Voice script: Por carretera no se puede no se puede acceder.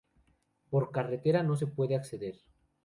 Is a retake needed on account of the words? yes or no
yes